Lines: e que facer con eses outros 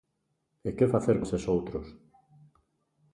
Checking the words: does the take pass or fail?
fail